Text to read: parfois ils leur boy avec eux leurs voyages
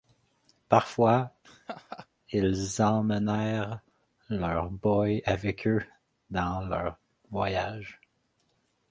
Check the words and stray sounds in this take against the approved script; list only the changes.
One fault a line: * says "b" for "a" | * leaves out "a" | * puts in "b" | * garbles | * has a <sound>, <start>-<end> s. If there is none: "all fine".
* has a laugh, 1.4-2.1 s
* puts in "emmenèrent"
* puts in "dans"